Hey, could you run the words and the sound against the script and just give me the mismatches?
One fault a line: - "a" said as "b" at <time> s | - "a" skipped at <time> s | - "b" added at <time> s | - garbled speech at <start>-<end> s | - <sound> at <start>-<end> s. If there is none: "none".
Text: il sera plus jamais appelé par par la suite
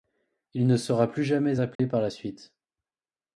- "ne" added at 0.7 s
- dropout at 1.8-1.8 s
- "par" skipped at 2.0 s